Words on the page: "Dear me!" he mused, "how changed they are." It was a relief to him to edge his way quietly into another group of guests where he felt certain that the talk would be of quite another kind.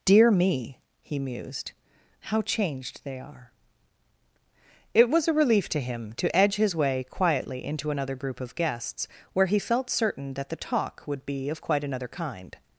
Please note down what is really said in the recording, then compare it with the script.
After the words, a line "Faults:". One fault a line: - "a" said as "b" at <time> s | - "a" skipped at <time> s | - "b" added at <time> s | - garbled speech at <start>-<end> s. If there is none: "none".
"Dear me!" he mused, "how changed they are." It was a relief to him to edge his way quietly into another group of guests where he felt certain that the talk would be of quite another kind.
Faults:
none